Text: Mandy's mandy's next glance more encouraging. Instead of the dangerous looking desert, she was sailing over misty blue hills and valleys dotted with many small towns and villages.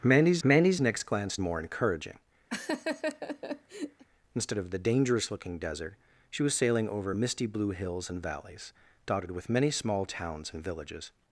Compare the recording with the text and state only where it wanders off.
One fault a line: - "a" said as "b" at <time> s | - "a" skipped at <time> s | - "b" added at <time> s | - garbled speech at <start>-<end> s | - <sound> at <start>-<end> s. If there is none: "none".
- laugh at 2.5-4.1 s